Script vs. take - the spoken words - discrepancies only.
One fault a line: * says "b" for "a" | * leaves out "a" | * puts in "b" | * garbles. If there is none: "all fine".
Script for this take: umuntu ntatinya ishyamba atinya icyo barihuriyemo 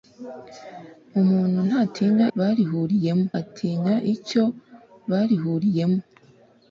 * says "barihuriyemo" for "ishyamba"